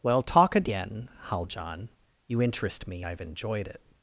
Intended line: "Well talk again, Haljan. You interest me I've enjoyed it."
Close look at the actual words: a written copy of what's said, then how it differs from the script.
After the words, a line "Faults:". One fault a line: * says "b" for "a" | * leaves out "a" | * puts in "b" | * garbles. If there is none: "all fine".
"Well talk again, Haljan. You interest me I've enjoyed it."
Faults:
all fine